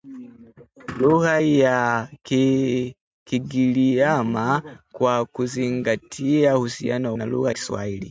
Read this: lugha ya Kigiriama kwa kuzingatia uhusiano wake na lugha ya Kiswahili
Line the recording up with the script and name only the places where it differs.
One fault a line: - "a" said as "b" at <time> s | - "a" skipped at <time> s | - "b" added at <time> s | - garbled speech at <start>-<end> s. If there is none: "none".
- "wake" skipped at 7.2 s
- "ya" skipped at 7.5 s